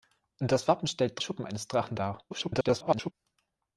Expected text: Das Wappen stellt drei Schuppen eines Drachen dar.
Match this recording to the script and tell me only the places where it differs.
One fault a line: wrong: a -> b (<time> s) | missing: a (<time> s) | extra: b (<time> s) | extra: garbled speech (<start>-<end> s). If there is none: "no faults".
missing: drei (1.2 s)
extra: garbled speech (2.3-3.1 s)